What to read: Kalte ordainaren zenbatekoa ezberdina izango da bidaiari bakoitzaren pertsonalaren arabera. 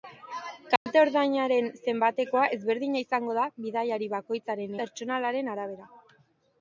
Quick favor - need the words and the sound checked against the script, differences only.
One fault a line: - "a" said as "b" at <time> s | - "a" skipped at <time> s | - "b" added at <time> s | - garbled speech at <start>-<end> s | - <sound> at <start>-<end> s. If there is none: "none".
- dropout at 0.8-0.9 s